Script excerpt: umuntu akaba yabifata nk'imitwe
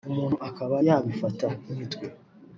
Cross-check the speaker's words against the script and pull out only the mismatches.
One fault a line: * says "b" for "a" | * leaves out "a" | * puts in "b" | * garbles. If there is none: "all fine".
all fine